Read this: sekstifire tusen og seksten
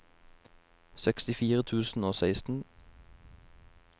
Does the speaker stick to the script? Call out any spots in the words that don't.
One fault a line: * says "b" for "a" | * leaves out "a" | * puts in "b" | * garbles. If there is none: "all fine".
all fine